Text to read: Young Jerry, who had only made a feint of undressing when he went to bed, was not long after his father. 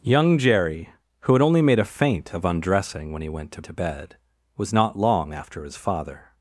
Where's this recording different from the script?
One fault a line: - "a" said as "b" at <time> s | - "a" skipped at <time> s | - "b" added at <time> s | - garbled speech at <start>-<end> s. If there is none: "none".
- "to" added at 3.6 s